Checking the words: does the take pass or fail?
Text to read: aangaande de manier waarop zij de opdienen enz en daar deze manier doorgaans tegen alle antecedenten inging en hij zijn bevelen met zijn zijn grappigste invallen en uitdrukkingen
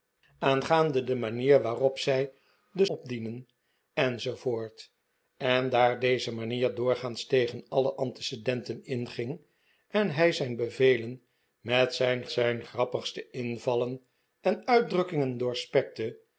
pass